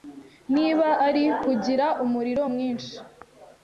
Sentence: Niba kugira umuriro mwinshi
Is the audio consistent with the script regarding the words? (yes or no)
no